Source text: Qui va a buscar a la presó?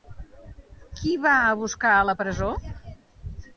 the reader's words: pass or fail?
pass